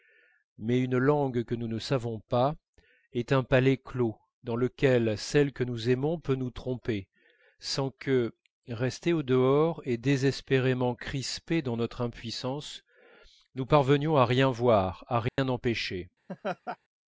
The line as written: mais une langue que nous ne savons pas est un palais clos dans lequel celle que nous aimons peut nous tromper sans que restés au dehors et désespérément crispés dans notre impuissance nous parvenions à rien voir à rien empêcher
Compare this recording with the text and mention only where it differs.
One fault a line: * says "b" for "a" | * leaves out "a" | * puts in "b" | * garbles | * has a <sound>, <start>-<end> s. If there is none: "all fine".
* has a dropout, 15.3-15.4 s
* has a laugh, 16.3-16.8 s